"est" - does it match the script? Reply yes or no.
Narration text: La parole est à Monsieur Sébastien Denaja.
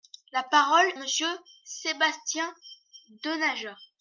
no